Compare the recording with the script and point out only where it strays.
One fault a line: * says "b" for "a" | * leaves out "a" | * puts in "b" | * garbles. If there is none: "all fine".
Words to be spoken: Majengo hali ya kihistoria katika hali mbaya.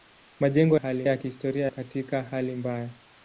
all fine